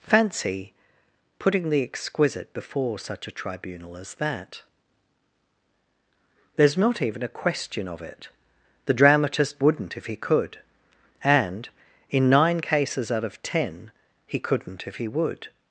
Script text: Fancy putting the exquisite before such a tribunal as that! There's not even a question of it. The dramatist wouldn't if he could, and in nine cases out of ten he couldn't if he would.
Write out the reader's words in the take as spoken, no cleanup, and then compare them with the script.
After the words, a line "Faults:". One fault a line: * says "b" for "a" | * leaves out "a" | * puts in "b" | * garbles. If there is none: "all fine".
Fancy putting the exquisite before such a tribunal as that! There's not even a question of it. The dramatist wouldn't if he could, and in nine cases out of ten he couldn't if he would.
Faults:
all fine